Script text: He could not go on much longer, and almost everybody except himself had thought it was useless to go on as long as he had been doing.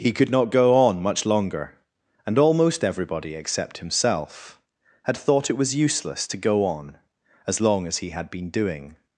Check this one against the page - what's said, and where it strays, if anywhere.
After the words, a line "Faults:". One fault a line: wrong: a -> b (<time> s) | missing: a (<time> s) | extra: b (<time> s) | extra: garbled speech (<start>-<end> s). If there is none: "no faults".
He could not go on much longer, and almost everybody except himself had thought it was useless to go on as long as he had been doing.
Faults:
no faults